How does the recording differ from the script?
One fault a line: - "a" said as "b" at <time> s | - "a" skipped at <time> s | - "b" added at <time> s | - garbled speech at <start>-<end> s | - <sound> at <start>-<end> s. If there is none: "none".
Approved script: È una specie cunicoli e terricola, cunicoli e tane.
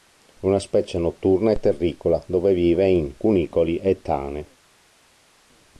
- "cunicoli" said as "notturna" at 1.0 s
- "dove vive in" added at 2.3 s